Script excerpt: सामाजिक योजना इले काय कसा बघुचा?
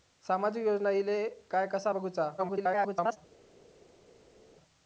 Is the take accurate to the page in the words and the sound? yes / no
no